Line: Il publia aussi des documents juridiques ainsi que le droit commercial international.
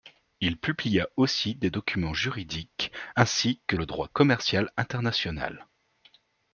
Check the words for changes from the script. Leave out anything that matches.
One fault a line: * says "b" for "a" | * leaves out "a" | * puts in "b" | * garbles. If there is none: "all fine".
all fine